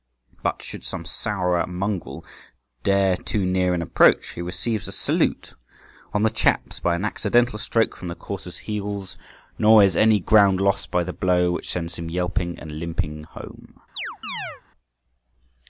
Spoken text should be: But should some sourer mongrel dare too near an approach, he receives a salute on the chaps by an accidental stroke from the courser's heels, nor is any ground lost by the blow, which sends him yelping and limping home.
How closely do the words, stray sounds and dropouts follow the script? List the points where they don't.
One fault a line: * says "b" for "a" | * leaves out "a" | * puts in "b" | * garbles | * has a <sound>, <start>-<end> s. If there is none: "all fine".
* has a chirp, 13.9-14.6 s